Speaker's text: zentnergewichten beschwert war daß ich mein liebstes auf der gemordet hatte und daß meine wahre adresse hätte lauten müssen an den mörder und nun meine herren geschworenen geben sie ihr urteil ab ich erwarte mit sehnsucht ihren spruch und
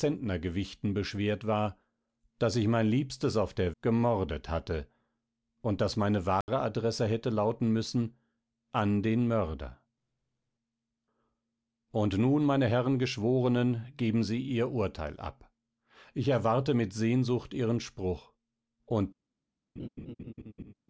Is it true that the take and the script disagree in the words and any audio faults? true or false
true